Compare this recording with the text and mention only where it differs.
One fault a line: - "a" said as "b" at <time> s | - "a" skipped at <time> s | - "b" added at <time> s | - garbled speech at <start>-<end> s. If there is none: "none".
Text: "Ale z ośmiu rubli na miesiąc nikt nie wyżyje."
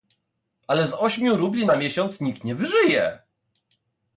none